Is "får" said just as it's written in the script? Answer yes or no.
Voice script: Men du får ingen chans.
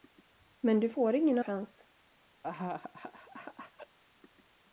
yes